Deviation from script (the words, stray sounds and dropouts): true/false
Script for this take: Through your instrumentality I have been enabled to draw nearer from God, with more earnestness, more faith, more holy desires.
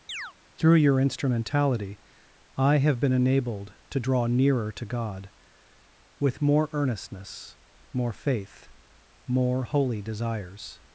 true